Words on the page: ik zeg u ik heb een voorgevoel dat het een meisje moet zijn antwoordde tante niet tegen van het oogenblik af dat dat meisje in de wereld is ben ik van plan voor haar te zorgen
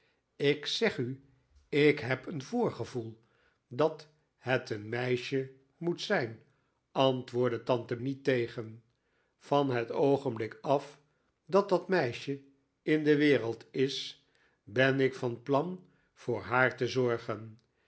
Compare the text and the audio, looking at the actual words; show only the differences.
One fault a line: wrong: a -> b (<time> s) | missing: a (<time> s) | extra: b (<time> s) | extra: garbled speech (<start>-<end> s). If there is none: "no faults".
no faults